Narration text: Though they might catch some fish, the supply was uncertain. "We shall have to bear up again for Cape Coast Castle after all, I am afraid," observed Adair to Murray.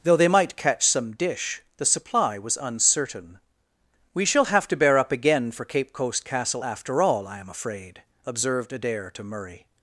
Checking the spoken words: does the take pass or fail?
fail